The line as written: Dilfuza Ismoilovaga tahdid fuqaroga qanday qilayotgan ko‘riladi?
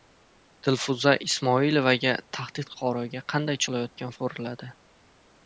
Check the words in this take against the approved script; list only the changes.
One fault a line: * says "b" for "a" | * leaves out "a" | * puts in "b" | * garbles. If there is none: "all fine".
all fine